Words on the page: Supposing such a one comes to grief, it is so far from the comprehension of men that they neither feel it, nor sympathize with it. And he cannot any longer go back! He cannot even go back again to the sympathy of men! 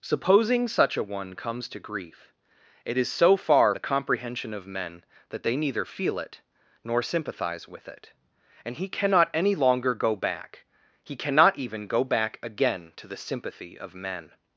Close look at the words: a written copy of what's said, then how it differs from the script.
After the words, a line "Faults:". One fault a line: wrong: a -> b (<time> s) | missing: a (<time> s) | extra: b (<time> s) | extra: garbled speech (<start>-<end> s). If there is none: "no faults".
Supposing such a one comes to grief, it is so far the comprehension of men that they neither feel it, nor sympathize with it. And he cannot any longer go back! He cannot even go back again to the sympathy of men!
Faults:
missing: from (3.8 s)